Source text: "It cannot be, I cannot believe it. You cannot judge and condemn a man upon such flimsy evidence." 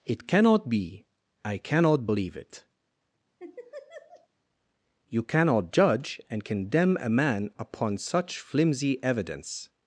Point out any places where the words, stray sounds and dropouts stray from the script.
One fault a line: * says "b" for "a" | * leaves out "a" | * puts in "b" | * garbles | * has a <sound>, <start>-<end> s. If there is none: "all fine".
* has a laugh, 3.4-4.3 s